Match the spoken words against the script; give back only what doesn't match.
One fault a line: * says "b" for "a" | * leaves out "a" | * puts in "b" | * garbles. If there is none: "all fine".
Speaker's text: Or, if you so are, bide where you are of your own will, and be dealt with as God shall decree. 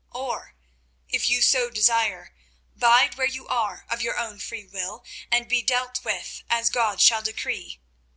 * says "desire" for "are"
* puts in "free"